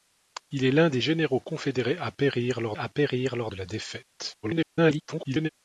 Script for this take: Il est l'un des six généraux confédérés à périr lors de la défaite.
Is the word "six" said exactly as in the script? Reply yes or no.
no